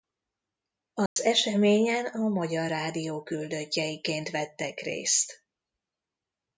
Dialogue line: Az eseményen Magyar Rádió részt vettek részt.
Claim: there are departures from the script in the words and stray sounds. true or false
true